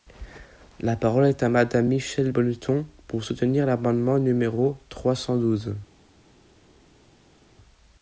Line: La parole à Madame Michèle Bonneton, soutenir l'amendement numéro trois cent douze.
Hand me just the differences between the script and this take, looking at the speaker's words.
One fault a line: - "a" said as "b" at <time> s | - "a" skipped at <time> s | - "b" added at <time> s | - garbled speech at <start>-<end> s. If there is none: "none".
- "est" added at 1.3 s
- "pour" added at 3.1 s